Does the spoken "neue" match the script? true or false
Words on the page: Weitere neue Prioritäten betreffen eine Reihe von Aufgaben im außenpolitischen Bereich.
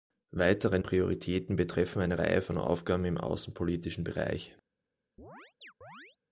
false